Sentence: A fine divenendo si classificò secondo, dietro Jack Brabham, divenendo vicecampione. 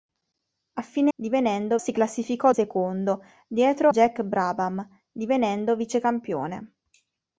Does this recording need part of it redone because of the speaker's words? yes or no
no